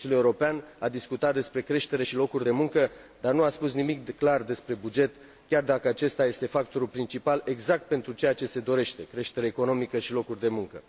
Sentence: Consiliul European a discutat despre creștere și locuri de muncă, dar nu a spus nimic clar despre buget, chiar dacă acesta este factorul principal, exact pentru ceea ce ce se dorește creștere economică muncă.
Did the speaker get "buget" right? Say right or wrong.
right